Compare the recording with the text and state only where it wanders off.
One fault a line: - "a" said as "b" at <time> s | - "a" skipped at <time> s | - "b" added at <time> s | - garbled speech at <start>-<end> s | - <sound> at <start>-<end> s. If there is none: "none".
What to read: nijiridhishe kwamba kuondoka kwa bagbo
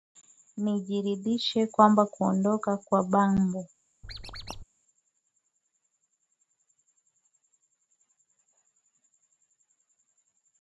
- squeak at 4.0-4.6 s